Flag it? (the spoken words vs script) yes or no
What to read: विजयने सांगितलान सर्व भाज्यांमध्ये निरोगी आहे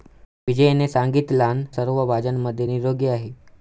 no